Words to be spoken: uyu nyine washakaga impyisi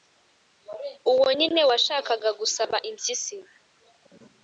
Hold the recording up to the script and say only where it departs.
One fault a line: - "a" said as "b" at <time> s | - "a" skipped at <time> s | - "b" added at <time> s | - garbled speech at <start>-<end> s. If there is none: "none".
- "uyu" said as "uwo" at 1.1 s
- "gusaba" added at 2.4 s